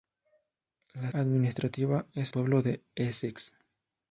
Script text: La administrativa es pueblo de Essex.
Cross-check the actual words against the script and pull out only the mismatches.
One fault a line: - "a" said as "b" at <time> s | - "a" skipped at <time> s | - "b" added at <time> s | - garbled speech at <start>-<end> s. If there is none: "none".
none